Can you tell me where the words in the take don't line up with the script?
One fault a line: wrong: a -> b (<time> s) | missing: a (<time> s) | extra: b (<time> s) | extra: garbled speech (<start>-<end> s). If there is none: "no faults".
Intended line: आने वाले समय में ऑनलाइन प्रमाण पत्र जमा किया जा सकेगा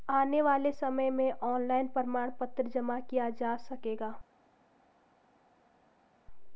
no faults